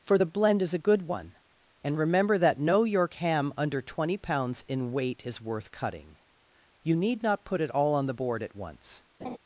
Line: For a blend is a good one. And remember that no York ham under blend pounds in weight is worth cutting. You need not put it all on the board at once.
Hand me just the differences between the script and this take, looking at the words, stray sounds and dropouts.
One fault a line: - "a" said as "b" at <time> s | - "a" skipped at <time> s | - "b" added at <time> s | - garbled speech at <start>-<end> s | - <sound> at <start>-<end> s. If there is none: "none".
- "a" said as "the" at 0.1 s
- "blend" said as "twenty" at 3.8 s
- laugh at 9.2-9.4 s